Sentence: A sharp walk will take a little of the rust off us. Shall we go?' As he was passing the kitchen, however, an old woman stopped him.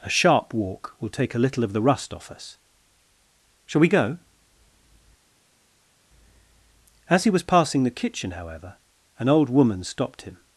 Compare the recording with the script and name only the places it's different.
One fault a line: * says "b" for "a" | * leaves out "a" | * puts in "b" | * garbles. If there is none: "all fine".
all fine